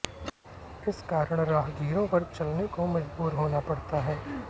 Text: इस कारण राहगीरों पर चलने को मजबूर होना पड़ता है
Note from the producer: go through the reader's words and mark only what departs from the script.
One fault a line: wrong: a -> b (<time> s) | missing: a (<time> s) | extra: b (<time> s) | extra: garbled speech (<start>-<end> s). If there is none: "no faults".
no faults